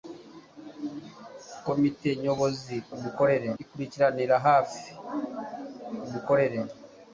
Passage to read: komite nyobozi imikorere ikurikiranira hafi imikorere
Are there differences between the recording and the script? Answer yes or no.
no